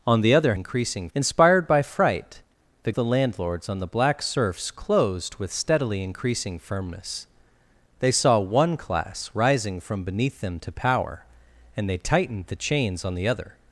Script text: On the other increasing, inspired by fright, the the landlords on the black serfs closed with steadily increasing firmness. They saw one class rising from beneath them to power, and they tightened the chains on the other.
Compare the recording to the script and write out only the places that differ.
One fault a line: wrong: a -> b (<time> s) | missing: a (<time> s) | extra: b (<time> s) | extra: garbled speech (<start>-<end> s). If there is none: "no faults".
no faults